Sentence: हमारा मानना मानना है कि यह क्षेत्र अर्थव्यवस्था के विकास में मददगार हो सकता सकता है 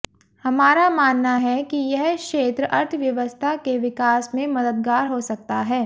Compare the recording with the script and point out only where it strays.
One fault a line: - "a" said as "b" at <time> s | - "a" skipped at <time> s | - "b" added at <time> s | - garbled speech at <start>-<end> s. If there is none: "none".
- "मानना" skipped at 1.4 s
- "सकता" skipped at 5.6 s